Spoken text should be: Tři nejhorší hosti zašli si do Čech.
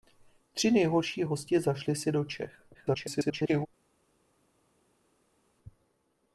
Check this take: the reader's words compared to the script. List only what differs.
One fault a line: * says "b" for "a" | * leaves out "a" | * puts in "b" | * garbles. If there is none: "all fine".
* garbles